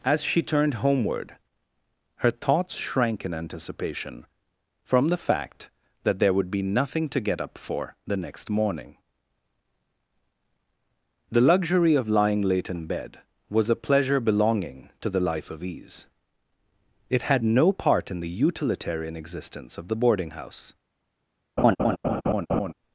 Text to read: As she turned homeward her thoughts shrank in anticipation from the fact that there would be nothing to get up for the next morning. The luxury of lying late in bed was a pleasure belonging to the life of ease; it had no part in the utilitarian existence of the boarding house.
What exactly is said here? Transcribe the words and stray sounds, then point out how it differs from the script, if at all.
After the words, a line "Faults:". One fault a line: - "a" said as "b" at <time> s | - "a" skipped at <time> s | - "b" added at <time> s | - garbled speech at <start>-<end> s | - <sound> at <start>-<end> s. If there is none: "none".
As she turned homeward her thoughts shrank in anticipation from the fact that there would be nothing to get up for the next morning. The luxury of lying late in bed was a pleasure belonging to the life of ease; it had no part in the utilitarian existence of the boarding house.
Faults:
- laugh at 21.6-22.7 s